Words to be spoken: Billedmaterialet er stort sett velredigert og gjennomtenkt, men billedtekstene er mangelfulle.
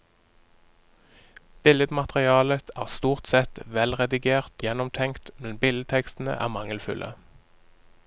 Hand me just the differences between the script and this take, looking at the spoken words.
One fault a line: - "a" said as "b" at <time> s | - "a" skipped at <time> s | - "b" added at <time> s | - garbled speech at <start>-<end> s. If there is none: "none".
- "og" skipped at 4.7 s